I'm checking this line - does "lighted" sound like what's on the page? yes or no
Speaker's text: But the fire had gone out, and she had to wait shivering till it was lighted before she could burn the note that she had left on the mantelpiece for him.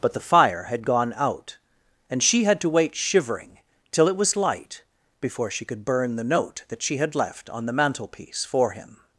no